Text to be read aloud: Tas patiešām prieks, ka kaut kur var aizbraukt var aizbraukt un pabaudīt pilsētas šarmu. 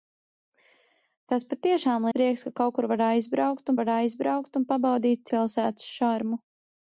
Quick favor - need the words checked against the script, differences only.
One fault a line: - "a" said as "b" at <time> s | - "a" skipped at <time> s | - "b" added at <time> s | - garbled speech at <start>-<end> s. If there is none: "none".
none